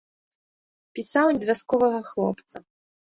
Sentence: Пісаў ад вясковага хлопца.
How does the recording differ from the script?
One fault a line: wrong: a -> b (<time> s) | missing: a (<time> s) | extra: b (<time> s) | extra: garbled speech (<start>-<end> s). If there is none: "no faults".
no faults